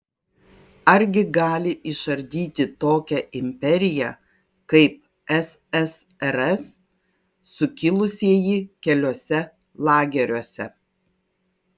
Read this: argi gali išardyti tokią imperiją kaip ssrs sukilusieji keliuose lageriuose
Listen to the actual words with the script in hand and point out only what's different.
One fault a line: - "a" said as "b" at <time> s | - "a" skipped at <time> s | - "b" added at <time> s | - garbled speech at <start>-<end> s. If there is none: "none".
none